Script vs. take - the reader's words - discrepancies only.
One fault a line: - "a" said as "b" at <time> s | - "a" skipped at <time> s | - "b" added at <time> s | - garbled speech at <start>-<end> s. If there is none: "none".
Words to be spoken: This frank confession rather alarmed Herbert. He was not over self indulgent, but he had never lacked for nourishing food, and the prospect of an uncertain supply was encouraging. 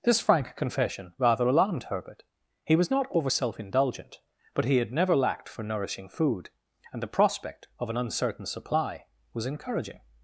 none